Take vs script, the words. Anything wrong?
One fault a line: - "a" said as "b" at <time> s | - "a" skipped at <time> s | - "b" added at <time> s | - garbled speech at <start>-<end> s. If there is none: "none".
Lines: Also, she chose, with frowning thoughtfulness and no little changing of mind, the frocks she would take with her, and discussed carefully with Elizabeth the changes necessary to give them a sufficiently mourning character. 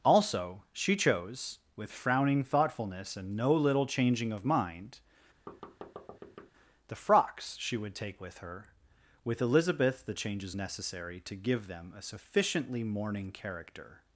- "and discussed carefully" skipped at 8.7 s